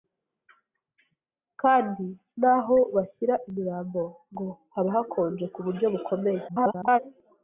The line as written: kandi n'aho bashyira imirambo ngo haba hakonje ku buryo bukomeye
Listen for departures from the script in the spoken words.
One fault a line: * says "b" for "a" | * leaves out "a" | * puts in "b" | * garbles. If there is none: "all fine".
* garbles